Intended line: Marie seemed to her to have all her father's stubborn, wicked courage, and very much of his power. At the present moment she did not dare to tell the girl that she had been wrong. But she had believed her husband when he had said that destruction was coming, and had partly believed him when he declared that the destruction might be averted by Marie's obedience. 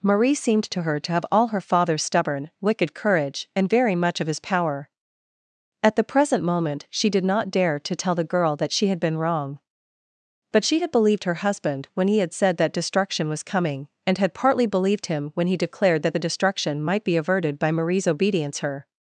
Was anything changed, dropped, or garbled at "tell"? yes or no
no